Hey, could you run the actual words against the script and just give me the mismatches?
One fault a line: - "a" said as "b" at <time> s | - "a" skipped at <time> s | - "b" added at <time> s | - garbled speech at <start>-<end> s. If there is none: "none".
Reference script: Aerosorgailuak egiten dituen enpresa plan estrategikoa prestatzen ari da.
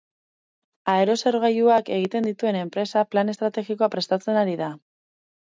none